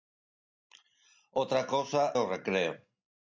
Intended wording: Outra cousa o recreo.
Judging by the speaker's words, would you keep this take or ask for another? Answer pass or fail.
pass